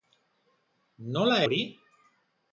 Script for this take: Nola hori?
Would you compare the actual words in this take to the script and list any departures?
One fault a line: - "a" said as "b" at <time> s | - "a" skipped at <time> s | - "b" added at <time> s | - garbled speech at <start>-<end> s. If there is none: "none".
none